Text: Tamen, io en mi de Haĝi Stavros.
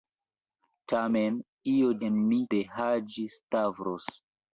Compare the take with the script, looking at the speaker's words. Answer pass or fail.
pass